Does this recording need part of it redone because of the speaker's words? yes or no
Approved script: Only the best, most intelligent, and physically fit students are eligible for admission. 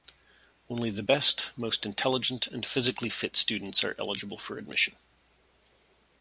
no